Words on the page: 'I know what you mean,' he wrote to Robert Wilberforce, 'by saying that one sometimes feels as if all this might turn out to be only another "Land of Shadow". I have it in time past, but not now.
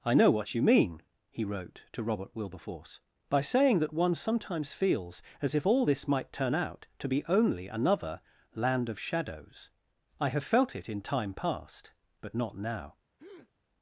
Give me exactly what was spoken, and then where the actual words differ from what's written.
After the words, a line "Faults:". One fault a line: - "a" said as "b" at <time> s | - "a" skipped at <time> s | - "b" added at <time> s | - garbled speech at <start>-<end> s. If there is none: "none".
'I know what you mean,' he wrote to Robert Wilberforce, 'by saying that one sometimes feels as if all this might turn out to be only another "Land of Shadows". I have felt it in time past, but not now.
Faults:
- "Shadow" said as "Shadows" at 9.0 s
- "felt" added at 10.4 s